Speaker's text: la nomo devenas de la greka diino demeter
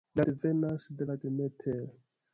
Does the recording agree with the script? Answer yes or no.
no